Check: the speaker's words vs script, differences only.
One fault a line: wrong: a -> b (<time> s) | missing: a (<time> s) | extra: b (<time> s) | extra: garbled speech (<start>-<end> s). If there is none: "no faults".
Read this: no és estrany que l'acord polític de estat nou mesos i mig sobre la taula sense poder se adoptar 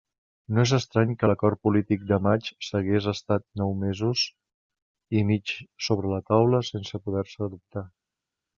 extra: maig s'hagués (2.3 s)